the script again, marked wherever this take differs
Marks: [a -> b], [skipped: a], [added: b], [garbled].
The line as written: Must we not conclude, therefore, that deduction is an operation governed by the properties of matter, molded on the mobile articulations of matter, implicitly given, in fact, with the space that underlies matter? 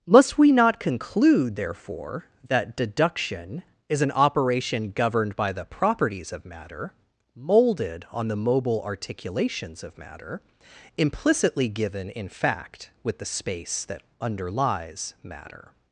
Must we not conclude, therefore, that deduction is an operation governed by the properties of matter, molded on the mobile articulations of matter, implicitly given, in fact, with the space that underlies matter?